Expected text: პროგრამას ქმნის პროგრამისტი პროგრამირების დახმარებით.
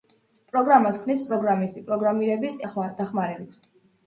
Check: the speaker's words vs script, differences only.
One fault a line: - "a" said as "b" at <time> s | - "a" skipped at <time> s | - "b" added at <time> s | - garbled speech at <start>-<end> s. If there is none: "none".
none